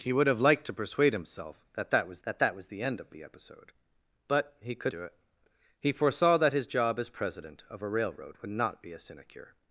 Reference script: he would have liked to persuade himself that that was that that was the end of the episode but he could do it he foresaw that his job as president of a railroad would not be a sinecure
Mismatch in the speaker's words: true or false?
false